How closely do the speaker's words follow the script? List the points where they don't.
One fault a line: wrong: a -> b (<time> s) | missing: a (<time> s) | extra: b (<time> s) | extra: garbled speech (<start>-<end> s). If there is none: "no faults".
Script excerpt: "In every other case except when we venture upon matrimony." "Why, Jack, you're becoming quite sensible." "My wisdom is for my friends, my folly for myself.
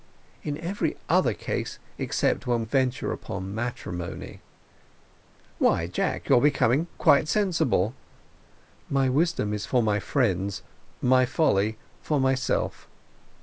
missing: we (2.6 s)